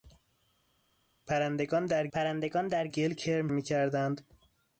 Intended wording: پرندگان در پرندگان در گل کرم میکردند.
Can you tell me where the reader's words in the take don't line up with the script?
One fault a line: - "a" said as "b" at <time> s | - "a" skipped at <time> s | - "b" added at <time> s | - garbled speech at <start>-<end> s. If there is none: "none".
none